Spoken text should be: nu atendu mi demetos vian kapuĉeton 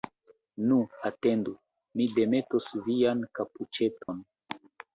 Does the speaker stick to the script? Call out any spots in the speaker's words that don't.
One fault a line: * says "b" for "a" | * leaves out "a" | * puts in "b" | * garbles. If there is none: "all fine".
all fine